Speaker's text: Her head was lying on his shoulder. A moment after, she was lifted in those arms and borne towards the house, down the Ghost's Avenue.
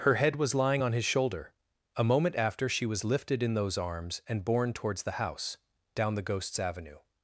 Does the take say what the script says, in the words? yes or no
yes